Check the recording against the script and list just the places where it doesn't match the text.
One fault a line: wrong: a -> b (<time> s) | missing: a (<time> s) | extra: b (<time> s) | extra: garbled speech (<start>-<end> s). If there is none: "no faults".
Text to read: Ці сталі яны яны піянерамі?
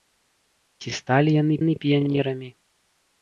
no faults